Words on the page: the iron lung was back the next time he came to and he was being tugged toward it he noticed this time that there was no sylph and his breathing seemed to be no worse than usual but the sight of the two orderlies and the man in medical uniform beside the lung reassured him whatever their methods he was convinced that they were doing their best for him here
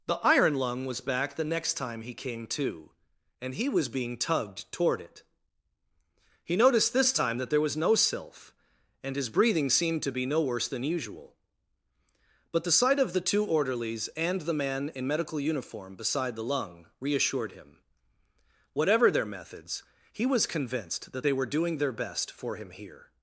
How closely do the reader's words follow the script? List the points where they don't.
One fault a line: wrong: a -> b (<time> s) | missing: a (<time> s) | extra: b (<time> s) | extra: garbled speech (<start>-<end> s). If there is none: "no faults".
no faults